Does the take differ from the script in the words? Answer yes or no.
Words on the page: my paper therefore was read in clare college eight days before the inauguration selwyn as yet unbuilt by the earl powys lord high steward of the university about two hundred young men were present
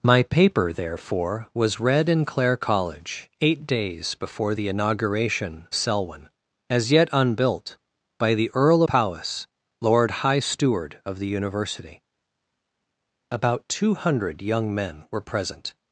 no